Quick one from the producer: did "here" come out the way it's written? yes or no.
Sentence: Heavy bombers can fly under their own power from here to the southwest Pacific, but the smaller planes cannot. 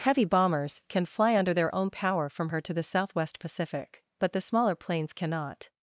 no